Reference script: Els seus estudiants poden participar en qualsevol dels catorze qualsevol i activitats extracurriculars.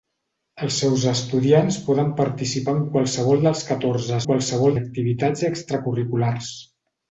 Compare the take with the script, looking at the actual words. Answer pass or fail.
pass